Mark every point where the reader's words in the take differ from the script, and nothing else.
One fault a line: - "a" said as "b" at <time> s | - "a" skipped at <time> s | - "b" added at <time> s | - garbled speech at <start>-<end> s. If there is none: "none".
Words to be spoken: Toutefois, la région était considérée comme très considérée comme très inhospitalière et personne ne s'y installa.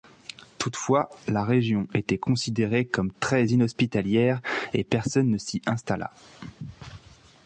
- "considérée comme très" skipped at 3.5 s